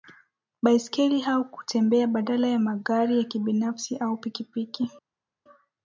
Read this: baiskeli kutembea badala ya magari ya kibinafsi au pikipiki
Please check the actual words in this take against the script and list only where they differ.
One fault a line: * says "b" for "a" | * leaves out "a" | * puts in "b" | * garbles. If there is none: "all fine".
* puts in "au"